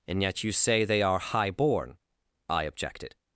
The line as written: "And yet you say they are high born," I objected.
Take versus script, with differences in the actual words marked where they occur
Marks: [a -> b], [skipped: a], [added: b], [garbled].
"And yet you say they are high born," I objected.